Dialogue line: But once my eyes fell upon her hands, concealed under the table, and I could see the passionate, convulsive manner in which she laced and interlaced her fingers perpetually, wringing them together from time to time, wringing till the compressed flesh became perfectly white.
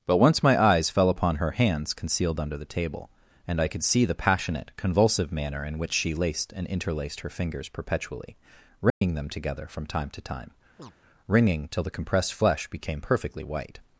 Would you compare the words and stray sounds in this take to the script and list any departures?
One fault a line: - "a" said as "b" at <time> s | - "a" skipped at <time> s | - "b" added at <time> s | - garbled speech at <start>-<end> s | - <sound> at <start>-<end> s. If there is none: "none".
- dropout at 8.9-9.0 s
- chirp at 10.8-10.9 s